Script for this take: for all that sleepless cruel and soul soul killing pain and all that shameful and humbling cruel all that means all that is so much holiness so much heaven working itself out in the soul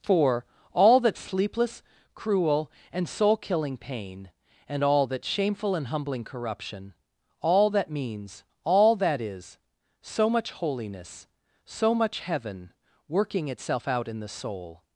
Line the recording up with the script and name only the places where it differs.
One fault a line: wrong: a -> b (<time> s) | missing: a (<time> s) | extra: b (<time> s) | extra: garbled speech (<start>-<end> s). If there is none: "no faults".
missing: soul (3.4 s)
wrong: cruel -> corruption (6.2 s)